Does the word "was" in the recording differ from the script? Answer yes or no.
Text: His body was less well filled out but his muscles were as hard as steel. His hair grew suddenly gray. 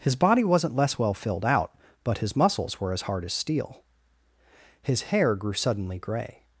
yes